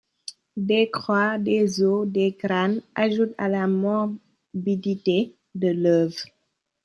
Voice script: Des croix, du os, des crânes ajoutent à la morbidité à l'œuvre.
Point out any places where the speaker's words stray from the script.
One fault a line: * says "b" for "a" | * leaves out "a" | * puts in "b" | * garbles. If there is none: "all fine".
* says "des" for "du"
* says "de" for "à"